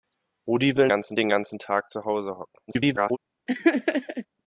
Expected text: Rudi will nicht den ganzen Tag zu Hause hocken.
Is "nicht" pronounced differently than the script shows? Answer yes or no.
yes